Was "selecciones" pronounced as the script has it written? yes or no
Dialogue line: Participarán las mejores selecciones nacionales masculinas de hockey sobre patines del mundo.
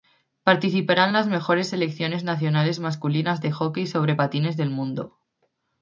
yes